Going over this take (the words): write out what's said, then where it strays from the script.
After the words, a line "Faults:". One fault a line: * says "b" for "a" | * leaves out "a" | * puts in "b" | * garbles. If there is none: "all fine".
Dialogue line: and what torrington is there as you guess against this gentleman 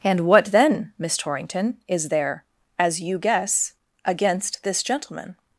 and what then miss torrington is there as you guess against this gentleman
Faults:
* puts in "then miss"